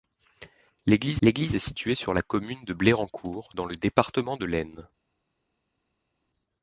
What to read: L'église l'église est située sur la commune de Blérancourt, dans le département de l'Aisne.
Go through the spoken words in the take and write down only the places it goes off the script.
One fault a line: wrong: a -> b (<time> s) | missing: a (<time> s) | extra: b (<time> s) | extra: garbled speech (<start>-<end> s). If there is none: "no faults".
no faults